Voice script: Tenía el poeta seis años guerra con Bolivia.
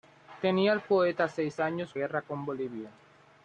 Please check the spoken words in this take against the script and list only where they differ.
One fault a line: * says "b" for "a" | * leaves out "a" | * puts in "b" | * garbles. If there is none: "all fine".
all fine